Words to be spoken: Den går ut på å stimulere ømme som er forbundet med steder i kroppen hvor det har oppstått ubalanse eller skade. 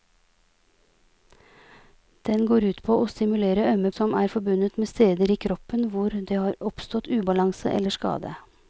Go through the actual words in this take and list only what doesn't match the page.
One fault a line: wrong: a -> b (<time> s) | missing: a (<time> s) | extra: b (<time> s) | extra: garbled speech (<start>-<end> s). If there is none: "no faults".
no faults